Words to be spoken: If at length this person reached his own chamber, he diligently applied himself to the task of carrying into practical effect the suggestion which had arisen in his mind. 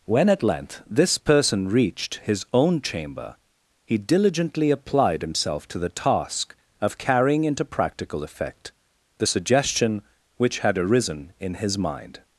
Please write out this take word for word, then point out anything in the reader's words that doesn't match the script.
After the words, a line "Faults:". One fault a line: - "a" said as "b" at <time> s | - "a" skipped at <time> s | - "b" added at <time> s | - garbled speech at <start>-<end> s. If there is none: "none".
When at length this person reached his own chamber, he diligently applied himself to the task of carrying into practical effect the suggestion which had arisen in his mind.
Faults:
- "If" said as "When" at 0.1 s